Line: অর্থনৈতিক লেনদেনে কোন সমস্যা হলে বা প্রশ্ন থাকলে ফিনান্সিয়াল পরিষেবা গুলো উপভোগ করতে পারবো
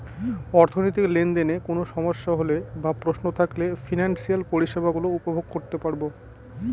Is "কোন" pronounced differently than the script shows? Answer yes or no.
no